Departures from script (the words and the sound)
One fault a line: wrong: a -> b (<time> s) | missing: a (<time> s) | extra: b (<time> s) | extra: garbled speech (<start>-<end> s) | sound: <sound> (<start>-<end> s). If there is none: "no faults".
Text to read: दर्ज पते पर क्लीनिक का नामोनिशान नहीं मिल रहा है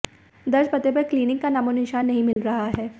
sound: dropout (2.3-2.4 s)